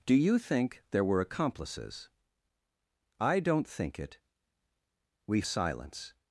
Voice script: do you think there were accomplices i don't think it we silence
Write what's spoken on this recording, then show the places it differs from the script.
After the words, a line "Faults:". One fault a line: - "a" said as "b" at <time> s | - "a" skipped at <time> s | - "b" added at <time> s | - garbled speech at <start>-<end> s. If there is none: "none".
do you think there were accomplices i don't think it we silence
Faults:
none